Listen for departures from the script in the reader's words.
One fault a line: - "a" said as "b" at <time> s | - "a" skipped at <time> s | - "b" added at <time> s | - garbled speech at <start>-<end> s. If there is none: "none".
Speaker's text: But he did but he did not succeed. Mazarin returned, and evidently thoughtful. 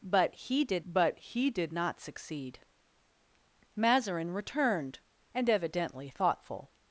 none